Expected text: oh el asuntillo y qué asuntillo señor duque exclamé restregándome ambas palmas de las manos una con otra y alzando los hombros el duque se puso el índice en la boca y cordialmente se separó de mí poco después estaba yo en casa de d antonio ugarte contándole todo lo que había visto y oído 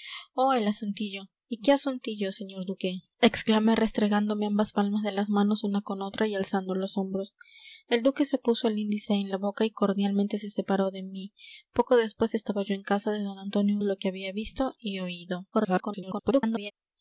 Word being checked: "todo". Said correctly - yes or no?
no